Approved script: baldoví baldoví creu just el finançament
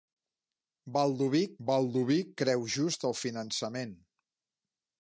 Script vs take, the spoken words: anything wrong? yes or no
no